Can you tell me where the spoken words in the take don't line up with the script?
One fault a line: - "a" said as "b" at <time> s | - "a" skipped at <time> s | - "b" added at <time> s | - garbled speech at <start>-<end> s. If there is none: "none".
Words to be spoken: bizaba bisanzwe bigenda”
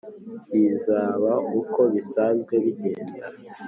- "uko" added at 1.6 s